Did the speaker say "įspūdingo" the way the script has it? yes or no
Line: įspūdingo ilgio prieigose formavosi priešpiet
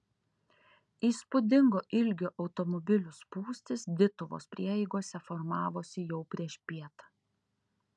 yes